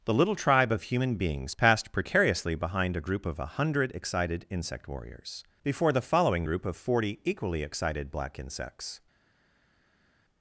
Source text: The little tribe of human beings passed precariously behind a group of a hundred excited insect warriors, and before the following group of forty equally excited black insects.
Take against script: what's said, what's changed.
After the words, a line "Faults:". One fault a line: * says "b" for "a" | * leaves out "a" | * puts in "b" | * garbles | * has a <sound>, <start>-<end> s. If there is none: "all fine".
The little tribe of human beings passed precariously behind a group of a hundred excited insect warriors, before the following group of forty equally excited black insects.
Faults:
* leaves out "and"